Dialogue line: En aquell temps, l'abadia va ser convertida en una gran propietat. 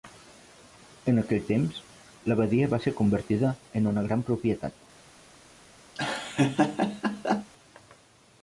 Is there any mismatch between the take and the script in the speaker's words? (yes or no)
no